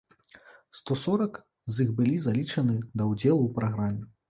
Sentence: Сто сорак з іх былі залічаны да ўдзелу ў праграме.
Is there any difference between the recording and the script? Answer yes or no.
no